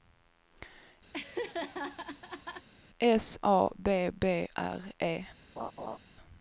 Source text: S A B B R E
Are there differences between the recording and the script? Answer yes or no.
no